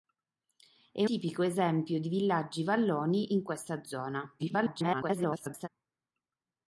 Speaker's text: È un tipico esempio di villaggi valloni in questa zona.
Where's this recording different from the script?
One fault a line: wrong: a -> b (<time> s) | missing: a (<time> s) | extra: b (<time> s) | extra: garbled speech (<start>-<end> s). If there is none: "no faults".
missing: un (1.1 s)
extra: garbled speech (4.4-5.7 s)